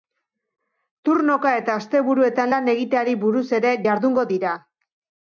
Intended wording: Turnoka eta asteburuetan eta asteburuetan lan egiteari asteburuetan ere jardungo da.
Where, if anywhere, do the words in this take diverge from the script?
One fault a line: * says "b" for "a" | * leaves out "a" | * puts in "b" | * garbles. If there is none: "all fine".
* leaves out "eta asteburuetan"
* says "buruz" for "asteburuetan"
* says "dira" for "da"